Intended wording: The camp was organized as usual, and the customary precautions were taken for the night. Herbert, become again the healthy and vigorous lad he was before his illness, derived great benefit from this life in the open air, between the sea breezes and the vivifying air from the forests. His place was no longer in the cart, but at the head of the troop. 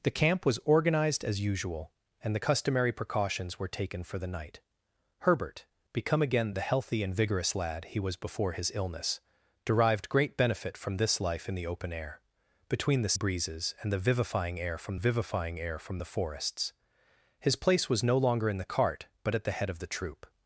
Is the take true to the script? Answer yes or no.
no